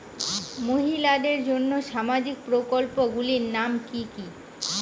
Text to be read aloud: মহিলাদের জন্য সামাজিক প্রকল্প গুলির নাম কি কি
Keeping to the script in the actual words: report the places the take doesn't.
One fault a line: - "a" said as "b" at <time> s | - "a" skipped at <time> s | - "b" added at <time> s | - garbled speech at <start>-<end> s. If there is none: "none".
none